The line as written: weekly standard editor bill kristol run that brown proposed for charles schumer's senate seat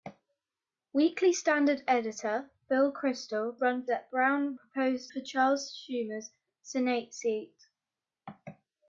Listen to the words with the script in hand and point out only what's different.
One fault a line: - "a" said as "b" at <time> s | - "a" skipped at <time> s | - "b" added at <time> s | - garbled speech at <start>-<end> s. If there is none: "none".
none